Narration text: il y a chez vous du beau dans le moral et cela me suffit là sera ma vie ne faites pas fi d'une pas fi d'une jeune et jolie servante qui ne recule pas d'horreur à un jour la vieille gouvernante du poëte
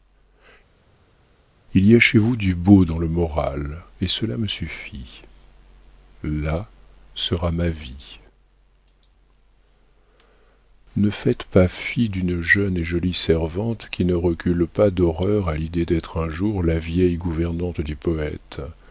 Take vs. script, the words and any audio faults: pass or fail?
fail